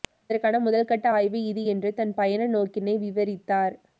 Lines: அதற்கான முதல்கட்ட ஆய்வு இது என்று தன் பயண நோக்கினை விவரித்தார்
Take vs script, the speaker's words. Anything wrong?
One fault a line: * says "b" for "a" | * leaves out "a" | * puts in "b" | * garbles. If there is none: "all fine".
all fine